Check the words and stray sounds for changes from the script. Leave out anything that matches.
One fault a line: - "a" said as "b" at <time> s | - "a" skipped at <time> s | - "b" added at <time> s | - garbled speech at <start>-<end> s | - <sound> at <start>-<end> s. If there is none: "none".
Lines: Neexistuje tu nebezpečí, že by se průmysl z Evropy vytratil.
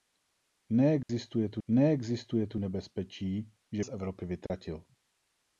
- dropout at 1.0-1.1 s
- "neexistuje tu" added at 1.7 s
- "by se průmysl" skipped at 3.8 s
- dropout at 4.5-4.5 s